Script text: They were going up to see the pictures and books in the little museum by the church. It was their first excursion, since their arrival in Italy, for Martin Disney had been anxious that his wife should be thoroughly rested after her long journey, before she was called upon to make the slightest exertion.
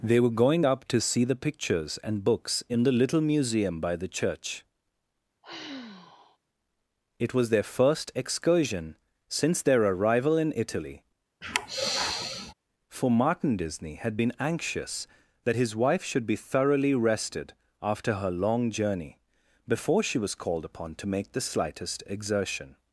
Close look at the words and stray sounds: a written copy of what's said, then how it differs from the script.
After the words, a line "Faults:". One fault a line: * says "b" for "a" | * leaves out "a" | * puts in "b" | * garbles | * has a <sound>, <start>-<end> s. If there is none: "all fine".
They were going up to see the pictures and books in the little museum by the church. It was their first excursion, since their arrival in Italy, for Martin Disney had been anxious that his wife should be thoroughly rested after her long journey, before she was called upon to make the slightest exertion.
Faults:
* has a sigh, 5.4-6.4 s
* has a sigh, 11.4-12.5 s